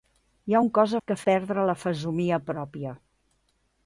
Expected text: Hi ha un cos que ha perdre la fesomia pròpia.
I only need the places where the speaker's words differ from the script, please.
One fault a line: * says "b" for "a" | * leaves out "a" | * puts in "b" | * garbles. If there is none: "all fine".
all fine